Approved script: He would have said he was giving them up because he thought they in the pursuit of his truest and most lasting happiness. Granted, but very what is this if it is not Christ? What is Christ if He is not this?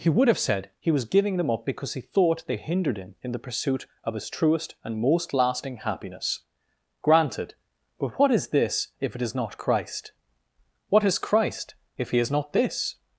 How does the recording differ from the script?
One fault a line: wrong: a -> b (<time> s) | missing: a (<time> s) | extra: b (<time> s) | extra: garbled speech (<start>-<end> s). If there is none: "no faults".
extra: hindered him (2.6 s)
missing: very (8.2 s)